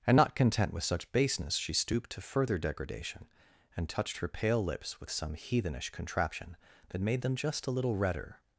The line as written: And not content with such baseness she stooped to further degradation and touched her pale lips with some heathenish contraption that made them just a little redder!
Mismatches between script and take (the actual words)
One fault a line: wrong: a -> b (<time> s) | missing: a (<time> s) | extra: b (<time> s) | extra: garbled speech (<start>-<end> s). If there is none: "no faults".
no faults